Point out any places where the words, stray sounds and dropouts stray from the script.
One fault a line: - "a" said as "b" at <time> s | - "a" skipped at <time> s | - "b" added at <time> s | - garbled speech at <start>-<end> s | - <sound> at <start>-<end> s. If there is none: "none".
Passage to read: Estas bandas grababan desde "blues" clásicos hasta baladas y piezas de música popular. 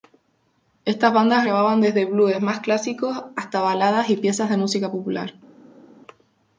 - "más" added at 2.4 s